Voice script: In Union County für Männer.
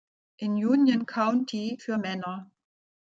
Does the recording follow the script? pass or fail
pass